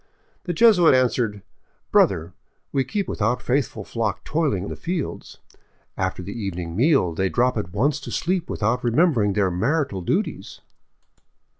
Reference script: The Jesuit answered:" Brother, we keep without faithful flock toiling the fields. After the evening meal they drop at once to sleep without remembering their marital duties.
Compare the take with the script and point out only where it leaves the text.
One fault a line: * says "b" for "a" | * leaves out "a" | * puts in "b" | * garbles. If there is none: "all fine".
all fine